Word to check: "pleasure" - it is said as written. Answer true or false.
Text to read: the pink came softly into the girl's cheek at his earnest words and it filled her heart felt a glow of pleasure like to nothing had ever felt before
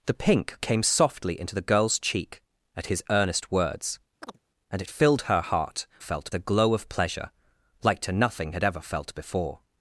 true